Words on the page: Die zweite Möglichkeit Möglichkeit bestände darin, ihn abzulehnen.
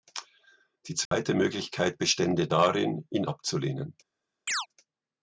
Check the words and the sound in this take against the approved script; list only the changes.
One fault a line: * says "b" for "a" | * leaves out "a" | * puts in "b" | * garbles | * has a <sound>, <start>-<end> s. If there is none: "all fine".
* has a dropout, 1.1-1.1 s
* leaves out "Möglichkeit"
* has a chirp, 4.5-4.7 s